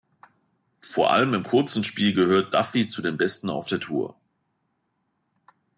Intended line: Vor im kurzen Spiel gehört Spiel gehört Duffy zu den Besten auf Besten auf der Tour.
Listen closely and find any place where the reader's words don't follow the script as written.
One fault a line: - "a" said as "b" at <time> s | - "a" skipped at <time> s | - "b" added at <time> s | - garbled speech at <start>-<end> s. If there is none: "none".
- "allem" added at 1.1 s
- "Spiel gehört" skipped at 2.5 s
- "Besten auf" skipped at 3.7 s